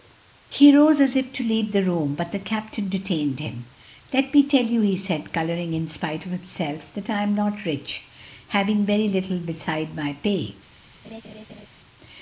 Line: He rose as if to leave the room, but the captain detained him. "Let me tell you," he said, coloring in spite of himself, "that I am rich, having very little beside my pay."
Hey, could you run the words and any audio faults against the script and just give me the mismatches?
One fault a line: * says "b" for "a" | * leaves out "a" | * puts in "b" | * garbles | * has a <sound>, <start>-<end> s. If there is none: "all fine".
* puts in "not"
* has a laugh, 11.0-11.7 s